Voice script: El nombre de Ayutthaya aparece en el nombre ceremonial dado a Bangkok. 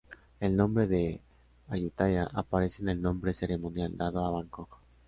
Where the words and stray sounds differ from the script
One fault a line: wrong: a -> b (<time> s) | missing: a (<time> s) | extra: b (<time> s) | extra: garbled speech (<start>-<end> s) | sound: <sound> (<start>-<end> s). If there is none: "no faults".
no faults